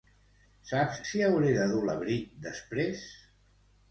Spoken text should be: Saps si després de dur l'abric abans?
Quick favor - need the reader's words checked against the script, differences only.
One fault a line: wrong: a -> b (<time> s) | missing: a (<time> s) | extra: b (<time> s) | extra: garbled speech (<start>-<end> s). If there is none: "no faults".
wrong: després -> hauré (1.3 s)
wrong: abans -> després (2.5 s)